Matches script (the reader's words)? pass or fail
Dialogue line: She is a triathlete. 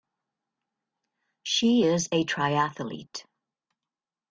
pass